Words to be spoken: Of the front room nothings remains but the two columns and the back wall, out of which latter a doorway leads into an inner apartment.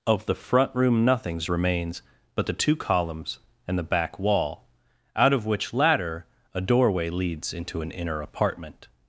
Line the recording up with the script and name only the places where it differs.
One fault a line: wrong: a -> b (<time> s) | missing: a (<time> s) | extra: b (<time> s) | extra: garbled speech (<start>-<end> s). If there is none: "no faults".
no faults